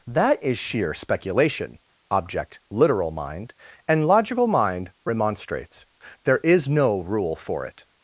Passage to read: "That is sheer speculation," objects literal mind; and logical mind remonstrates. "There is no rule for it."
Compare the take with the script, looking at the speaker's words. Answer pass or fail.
fail